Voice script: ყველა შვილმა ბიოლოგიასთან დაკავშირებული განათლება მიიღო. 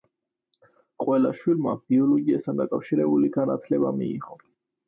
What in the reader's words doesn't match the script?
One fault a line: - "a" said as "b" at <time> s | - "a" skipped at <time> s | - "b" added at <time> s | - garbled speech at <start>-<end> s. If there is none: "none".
none